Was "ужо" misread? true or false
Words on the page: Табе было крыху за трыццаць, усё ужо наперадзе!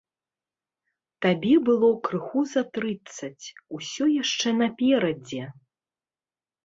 true